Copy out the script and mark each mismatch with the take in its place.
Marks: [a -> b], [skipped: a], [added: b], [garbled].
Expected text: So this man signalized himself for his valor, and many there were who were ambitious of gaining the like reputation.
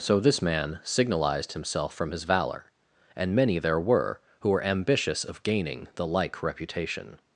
So this man signalized himself [for -> from] his valor, and many there were who were ambitious of gaining the like reputation.